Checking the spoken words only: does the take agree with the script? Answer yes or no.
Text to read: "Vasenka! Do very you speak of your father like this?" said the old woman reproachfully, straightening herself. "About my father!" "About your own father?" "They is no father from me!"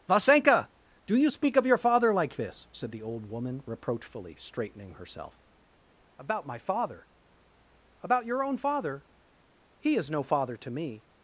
no